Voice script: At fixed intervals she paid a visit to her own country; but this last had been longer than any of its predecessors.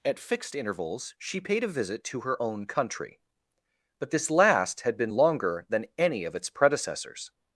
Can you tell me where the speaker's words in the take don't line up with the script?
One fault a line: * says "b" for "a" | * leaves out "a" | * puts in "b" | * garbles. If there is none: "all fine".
all fine